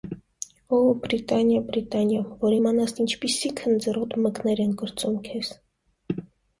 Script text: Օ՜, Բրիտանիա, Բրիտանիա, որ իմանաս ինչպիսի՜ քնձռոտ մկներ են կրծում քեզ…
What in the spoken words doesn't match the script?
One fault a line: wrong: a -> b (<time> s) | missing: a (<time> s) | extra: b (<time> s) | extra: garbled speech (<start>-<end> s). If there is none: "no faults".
no faults